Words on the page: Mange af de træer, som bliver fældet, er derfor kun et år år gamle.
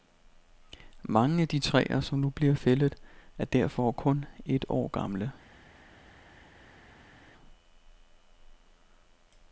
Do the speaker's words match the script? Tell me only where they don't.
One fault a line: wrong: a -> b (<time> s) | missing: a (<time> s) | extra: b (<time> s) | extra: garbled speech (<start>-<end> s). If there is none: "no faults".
extra: nu (2.2 s)
missing: år (4.9 s)